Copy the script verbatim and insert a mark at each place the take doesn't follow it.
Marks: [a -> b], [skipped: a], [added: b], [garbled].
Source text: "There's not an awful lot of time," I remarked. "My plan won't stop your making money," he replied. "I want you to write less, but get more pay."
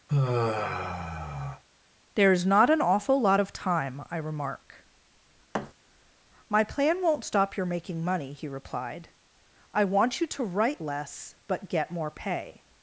"There's not an awful lot of time," I [remarked. -> remark] "My plan won't stop your making money," he replied. "I want you to write less, but get more pay."